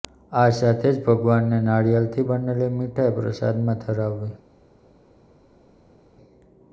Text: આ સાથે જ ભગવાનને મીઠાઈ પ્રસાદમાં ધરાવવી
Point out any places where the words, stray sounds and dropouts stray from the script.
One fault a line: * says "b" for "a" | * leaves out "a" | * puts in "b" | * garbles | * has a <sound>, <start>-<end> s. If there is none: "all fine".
* puts in "નારિયેળથી બનેલી"